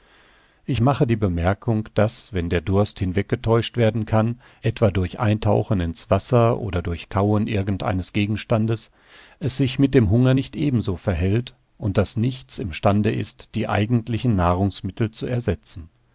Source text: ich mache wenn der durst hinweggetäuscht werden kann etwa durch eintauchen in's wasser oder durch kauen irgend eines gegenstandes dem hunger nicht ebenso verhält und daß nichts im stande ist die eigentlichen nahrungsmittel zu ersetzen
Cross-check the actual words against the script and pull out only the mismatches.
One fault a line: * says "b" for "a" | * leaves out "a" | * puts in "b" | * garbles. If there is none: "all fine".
* puts in "die bemerkung daß"
* puts in "es sich mit"